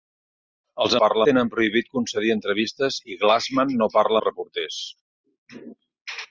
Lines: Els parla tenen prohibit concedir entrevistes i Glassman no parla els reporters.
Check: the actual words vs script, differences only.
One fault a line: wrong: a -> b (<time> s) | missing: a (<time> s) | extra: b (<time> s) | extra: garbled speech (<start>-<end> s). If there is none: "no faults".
no faults